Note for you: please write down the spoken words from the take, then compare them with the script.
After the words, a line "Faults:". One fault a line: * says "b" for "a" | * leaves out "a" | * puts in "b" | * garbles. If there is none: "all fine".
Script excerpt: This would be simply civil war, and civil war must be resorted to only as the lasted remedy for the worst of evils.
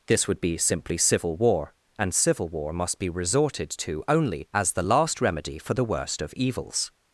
This would be simply civil war, and civil war must be resorted to only as the last remedy for the worst of evils.
Faults:
* says "last" for "lasted"